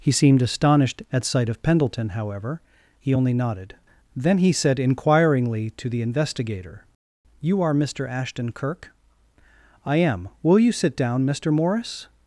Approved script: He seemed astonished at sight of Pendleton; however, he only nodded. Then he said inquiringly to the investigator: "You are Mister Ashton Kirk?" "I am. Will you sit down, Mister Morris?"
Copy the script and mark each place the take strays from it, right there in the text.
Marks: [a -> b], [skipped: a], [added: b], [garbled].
He seemed astonished at sight of Pendleton; however, he only nodded. Then he said inquiringly to the investigator: "You are Mister Ashton Kirk?" "I am. Will you sit down, Mister Morris?"